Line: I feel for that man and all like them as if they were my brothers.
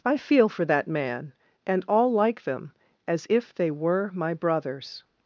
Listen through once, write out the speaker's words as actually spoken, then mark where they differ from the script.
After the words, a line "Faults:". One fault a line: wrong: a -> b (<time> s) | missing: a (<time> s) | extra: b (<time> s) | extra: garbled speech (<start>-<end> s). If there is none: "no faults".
I feel for that man and all like them as if they were my brothers.
Faults:
no faults